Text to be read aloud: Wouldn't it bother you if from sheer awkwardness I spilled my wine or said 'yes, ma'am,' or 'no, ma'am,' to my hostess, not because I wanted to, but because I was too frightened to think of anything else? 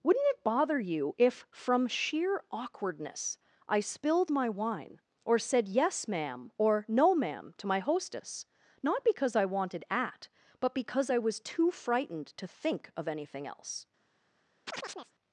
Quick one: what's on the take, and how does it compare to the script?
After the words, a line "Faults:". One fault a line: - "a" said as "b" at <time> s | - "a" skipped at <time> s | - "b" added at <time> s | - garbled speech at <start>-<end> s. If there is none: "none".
Wouldn't it bother you if from sheer awkwardness I spilled my wine or said 'yes, ma'am,' or 'no, ma'am,' to my hostess, not because I wanted at, but because I was too frightened to think of anything else?
Faults:
- "to" said as "at" at 9.9 s